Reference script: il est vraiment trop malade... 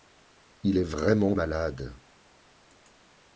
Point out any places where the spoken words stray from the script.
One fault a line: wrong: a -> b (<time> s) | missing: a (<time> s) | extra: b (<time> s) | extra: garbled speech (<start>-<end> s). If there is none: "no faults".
missing: trop (1.4 s)